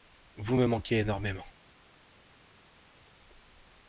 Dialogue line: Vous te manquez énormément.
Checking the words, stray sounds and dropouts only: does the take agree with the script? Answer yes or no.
no